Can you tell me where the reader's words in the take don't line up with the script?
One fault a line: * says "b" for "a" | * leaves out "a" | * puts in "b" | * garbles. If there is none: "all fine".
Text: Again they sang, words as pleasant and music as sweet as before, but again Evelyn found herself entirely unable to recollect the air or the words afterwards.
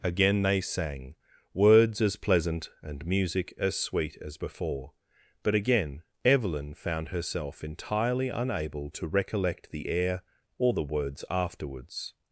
all fine